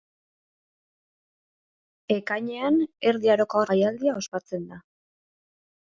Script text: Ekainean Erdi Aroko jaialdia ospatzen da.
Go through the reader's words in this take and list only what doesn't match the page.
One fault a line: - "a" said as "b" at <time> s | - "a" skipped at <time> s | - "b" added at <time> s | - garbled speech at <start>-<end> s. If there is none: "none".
none